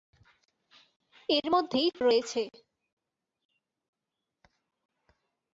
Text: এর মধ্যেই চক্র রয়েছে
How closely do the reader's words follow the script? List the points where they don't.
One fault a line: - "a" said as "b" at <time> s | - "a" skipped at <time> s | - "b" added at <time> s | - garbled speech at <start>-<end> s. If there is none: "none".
- "চক্র" skipped at 1.9 s